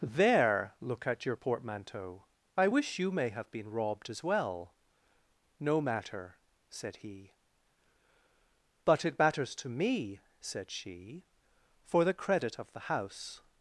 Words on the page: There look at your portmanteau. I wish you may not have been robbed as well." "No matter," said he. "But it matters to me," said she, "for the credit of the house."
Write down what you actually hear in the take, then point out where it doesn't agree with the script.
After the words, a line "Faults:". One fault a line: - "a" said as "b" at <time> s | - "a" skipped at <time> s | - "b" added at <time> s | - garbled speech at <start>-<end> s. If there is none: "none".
There look at your portmanteau. I wish you may have been robbed as well." "No matter," said he. "But it matters to me," said she, "for the credit of the house."
Faults:
- "not" skipped at 3.3 s